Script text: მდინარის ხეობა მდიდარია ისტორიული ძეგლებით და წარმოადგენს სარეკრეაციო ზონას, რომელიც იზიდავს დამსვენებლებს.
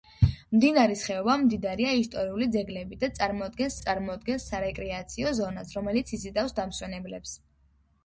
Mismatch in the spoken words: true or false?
true